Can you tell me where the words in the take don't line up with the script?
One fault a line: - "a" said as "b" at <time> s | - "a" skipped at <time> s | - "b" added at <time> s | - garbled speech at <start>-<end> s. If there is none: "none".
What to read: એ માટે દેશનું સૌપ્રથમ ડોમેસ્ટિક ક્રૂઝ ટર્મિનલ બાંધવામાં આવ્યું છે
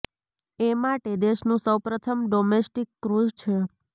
- "ટર્મિનલ બાંધવામાં આવ્યું" skipped at 3.3 s